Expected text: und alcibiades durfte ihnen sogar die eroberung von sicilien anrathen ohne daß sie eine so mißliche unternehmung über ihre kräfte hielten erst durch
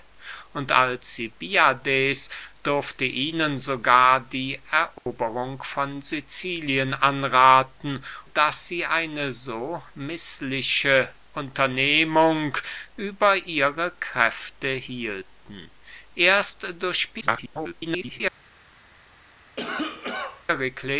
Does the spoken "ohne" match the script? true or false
false